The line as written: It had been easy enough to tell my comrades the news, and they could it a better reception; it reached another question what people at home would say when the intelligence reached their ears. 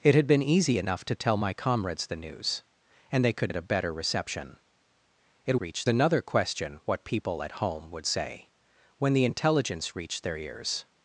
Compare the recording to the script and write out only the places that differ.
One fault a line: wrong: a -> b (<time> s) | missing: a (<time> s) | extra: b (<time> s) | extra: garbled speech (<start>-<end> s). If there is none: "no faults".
no faults